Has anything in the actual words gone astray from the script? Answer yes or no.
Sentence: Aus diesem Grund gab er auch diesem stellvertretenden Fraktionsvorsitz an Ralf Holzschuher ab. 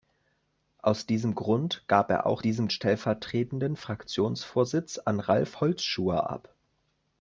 no